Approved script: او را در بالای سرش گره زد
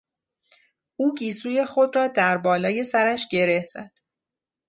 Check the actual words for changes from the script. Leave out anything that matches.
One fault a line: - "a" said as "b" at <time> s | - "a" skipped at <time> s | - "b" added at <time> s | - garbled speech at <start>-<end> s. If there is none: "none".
- "گیسوی خود" added at 1.1 s